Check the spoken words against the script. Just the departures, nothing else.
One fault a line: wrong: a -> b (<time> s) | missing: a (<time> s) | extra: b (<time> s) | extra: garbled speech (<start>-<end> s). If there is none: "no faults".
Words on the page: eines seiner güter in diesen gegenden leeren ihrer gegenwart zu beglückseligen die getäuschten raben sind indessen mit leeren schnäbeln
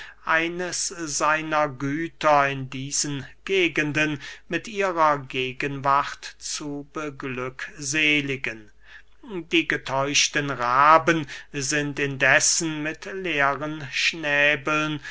wrong: leeren -> mit (4.5 s)